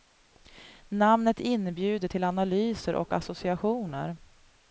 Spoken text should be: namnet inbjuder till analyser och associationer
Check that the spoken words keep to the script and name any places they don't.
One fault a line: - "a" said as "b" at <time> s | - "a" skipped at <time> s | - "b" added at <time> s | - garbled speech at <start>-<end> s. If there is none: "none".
none